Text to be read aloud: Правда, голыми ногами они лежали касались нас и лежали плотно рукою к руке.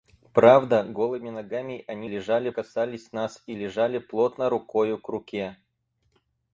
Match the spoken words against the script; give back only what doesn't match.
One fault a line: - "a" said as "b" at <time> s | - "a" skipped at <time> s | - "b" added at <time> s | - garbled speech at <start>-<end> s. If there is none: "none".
none